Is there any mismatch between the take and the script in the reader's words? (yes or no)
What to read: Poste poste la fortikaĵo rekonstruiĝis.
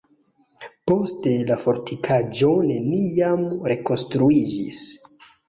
yes